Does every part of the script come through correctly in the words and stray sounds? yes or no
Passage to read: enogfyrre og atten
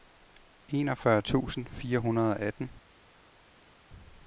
no